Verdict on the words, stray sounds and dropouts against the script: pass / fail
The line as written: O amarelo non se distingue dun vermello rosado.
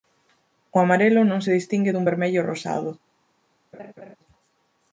fail